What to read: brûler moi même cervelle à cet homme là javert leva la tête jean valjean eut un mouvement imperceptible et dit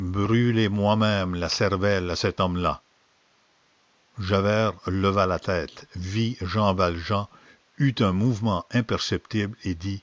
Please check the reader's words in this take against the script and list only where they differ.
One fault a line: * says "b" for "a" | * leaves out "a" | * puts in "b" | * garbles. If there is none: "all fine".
* puts in "la"
* puts in "vit"